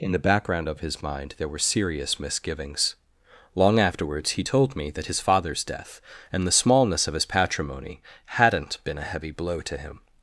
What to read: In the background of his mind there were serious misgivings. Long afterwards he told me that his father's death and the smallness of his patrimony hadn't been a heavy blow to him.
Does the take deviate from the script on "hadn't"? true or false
false